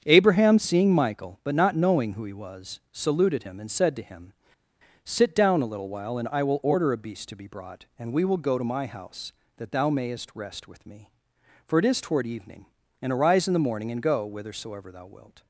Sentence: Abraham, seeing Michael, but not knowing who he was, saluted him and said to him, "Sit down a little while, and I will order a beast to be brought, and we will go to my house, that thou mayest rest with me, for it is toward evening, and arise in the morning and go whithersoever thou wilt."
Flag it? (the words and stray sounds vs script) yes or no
no